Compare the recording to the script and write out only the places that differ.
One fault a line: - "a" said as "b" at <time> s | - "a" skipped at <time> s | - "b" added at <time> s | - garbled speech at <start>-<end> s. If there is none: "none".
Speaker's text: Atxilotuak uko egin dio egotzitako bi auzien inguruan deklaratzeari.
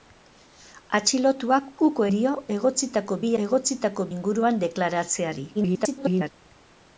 - "egin" skipped at 2.1 s
- "auzien" said as "egotzitako" at 3.4 s
- garbled speech at 5.5-6.3 s